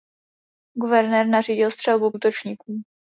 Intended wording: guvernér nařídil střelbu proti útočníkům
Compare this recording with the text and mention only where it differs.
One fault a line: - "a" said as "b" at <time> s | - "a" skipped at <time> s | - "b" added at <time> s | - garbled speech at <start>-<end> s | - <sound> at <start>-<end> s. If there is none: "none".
- "proti" skipped at 2.1 s